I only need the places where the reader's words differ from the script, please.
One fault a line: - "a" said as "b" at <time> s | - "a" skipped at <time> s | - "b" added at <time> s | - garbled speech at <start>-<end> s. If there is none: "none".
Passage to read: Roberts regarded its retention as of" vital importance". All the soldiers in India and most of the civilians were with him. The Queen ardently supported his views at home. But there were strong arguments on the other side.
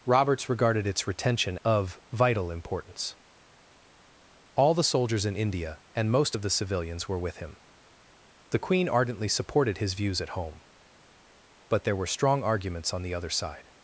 - "as" skipped at 1.6 s